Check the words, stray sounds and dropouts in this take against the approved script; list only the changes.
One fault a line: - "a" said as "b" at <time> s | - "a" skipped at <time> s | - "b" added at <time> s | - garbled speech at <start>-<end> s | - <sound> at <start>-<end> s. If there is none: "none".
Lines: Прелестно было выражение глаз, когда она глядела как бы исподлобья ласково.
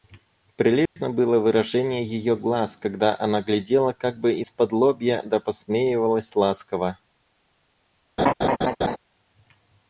- dropout at 0.9-1.0 s
- "ее" added at 2.0 s
- "да посмеивалась" added at 5.2 s
- laugh at 8.2-9.0 s